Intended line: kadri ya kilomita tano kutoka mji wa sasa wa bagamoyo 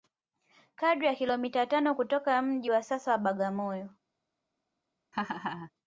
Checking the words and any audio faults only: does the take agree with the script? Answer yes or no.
no